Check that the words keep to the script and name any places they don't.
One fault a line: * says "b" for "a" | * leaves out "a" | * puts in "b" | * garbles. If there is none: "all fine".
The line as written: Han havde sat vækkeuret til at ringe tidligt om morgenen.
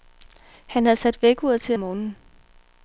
* leaves out "at ringe tidligt"